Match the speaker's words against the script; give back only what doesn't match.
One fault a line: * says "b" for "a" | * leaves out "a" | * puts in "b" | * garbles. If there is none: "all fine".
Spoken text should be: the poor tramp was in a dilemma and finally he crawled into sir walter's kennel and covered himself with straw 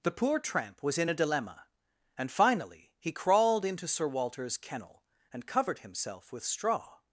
all fine